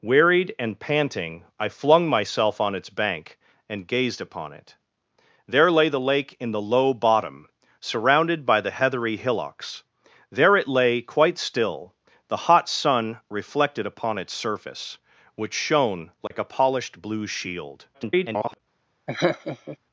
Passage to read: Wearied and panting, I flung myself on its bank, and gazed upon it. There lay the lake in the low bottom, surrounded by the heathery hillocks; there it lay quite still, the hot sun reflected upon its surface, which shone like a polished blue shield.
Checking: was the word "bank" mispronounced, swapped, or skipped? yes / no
no